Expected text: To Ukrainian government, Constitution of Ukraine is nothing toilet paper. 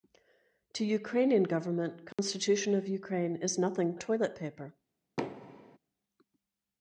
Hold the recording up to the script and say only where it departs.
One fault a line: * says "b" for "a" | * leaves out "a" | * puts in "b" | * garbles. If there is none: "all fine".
all fine